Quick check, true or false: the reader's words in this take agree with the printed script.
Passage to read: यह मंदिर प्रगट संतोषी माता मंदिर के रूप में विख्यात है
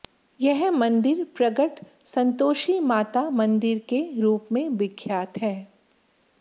true